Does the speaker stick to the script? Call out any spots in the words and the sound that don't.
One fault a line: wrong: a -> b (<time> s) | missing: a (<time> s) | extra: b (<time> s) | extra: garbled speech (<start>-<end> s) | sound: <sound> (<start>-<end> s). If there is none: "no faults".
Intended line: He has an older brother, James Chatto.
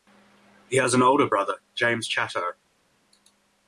no faults